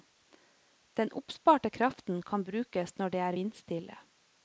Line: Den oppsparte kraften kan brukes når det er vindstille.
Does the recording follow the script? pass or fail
pass